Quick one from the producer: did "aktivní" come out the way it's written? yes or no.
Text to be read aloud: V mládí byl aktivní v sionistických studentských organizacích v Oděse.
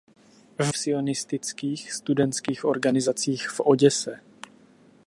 no